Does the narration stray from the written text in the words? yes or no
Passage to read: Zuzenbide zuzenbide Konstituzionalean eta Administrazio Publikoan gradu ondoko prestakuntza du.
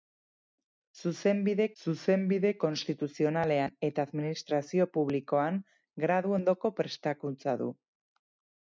no